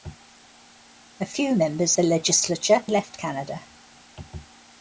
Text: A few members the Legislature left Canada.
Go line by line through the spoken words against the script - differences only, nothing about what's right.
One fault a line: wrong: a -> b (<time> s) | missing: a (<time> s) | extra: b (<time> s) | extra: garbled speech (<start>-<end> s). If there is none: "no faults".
no faults